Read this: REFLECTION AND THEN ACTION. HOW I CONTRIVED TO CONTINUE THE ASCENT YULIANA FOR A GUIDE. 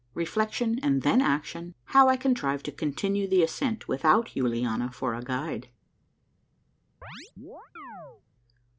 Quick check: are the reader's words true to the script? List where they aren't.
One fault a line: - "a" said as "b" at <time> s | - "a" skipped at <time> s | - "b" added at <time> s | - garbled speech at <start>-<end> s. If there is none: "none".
- "WITHOUT" added at 3.9 s